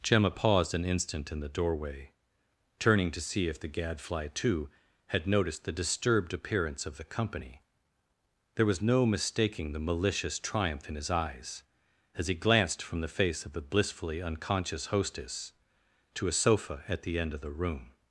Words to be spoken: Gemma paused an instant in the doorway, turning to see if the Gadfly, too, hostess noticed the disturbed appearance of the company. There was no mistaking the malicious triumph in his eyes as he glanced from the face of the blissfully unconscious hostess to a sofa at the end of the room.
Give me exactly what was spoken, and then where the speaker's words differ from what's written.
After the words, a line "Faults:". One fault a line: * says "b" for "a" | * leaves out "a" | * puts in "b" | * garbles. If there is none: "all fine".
Gemma paused an instant in the doorway, turning to see if the Gadfly, too, had noticed the disturbed appearance of the company. There was no mistaking the malicious triumph in his eyes as he glanced from the face of the blissfully unconscious hostess to a sofa at the end of the room.
Faults:
* says "had" for "hostess"